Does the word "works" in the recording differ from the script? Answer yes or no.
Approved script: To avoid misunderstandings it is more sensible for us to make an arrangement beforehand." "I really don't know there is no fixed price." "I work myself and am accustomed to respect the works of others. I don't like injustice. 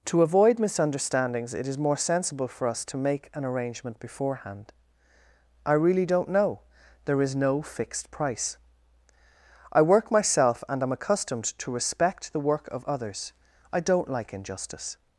yes